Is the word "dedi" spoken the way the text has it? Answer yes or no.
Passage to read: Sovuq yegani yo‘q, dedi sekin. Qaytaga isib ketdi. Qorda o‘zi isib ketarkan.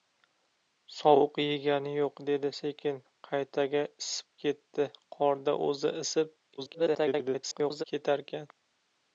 yes